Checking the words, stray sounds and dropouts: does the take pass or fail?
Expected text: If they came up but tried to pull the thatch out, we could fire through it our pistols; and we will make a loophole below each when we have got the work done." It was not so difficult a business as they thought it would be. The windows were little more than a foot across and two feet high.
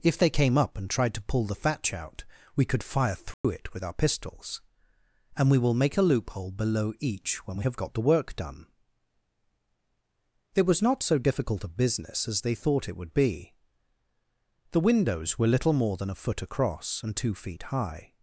fail